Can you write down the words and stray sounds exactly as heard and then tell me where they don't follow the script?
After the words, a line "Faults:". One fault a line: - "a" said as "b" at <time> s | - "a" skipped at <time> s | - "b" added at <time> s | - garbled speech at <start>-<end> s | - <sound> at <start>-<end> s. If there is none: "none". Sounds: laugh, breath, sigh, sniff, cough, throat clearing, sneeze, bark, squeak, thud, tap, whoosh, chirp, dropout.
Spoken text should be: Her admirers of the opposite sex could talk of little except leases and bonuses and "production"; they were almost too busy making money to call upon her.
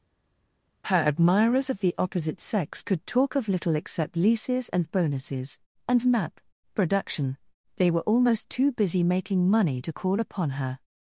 Her admirers of the opposite sex could talk of little except leases and bonuses and map "production"; they were almost too busy making money to call upon her.
Faults:
- "map" added at 6.0 s